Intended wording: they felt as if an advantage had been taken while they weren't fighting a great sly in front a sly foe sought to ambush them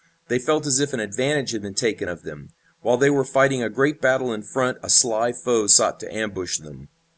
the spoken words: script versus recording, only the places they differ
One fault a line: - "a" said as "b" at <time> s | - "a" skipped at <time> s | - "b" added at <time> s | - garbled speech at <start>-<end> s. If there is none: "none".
- "of them" added at 2.1 s
- "weren't" said as "were" at 3.1 s
- "sly" said as "battle" at 4.0 s